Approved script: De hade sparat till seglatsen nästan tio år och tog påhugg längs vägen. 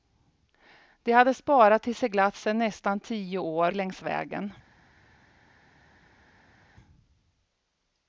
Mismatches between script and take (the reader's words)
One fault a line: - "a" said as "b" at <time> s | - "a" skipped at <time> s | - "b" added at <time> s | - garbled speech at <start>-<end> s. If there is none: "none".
- "och tog påhugg" skipped at 3.7 s